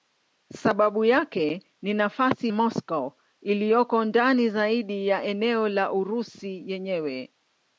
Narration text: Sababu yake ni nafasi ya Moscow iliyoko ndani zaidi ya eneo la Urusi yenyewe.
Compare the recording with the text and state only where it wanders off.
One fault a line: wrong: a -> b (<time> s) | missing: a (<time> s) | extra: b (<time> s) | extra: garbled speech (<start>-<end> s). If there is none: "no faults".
missing: ya (2.5 s)